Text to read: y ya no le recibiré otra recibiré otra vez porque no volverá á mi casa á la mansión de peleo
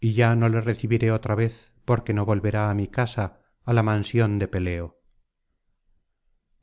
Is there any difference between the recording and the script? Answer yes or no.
yes